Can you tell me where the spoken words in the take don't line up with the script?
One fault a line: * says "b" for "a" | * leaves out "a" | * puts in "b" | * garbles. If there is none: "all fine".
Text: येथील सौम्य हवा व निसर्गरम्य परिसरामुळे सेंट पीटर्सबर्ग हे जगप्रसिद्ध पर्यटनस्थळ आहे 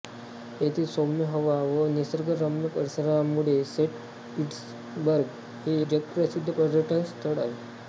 all fine